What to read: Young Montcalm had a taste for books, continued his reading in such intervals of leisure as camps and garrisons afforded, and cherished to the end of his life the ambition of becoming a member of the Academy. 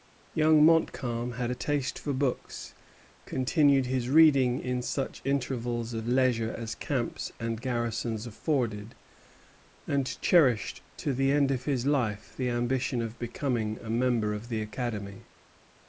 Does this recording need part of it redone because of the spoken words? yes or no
no